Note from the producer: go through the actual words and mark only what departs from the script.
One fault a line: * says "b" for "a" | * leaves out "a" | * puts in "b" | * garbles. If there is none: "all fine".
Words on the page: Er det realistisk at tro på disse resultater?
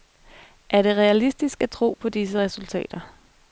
all fine